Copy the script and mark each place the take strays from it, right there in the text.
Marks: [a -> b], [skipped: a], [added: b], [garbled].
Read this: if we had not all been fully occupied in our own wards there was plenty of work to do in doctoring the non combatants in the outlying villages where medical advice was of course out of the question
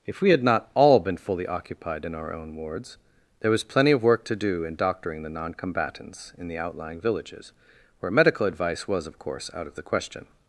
if we had not all been fully occupied in our own wards there was plenty of work to do in doctoring the non combatants in the outlying villages where medical advice was of course out of the question